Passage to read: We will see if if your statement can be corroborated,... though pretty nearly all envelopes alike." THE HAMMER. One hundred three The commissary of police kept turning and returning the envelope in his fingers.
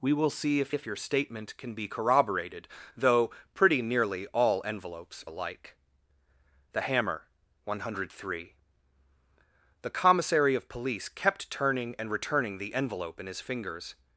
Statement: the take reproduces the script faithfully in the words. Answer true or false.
true